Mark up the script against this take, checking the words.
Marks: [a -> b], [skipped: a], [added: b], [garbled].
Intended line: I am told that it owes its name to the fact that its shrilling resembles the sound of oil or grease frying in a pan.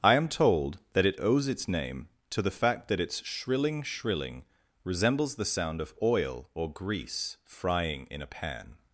I am told that it owes its name to the fact that its shrilling [added: shrilling] resembles the sound of oil or grease frying in a pan.